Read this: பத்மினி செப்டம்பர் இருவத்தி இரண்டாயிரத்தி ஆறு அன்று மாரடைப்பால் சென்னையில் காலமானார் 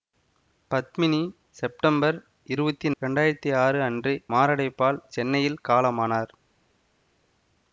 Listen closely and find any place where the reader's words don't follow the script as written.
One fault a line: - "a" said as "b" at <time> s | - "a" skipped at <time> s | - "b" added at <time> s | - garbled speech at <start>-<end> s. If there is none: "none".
none